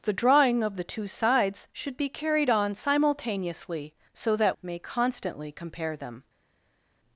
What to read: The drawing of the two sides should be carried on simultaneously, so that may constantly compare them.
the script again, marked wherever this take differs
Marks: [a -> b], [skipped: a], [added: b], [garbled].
The drawing of the two sides should be carried on simultaneously, so that may constantly compare them.